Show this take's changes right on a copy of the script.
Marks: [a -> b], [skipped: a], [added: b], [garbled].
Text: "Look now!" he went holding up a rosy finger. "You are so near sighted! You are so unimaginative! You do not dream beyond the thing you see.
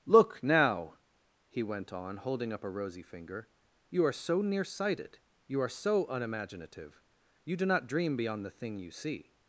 "Look now!" he went [added: on] holding up a rosy finger. "You are so near sighted! You are so unimaginative! You do not dream beyond the thing you see.